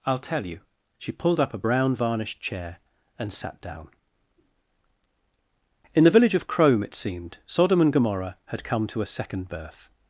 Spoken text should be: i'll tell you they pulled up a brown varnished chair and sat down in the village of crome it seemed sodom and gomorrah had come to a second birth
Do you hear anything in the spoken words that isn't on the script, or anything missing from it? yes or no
yes